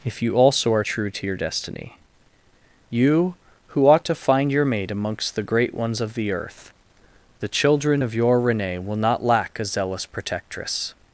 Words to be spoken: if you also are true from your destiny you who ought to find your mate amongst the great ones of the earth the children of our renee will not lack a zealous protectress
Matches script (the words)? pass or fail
fail